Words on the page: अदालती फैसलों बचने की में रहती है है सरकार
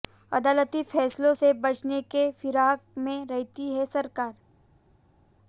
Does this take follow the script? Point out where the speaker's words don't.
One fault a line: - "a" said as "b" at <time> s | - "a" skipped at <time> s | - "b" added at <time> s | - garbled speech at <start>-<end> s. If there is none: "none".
- "से" added at 1.3 s
- "फिराक" added at 2.3 s
- "है" skipped at 3.8 s